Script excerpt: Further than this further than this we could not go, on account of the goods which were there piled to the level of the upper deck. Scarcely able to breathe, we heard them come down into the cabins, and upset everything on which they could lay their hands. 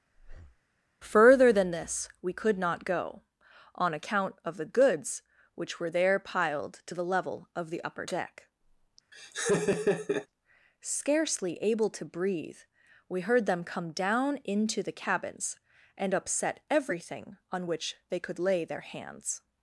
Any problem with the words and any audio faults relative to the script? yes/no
yes